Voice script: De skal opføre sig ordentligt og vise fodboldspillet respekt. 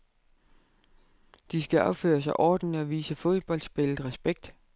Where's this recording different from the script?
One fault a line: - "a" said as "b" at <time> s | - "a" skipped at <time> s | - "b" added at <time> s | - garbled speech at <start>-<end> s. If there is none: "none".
none